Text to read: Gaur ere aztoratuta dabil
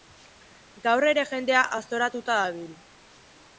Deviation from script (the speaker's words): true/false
true